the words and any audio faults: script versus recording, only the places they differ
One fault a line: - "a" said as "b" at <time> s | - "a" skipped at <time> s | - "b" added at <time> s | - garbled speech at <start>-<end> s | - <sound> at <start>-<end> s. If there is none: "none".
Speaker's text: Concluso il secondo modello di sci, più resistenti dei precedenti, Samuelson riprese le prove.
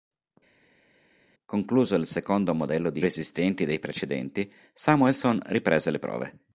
- "sci più" skipped at 3.0 s